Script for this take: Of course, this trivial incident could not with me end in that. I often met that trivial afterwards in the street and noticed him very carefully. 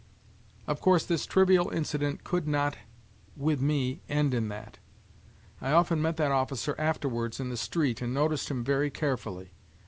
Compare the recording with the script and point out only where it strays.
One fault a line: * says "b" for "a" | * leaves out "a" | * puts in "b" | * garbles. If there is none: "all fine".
* says "officer" for "trivial"